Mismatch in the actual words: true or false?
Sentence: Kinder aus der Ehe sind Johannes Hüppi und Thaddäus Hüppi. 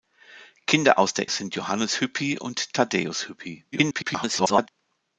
true